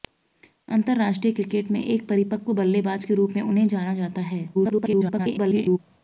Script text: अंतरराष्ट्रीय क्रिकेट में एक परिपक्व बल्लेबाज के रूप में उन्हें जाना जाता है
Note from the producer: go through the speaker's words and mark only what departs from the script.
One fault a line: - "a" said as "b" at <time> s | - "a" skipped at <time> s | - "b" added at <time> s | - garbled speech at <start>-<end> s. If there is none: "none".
- garbled speech at 4.5-5.8 s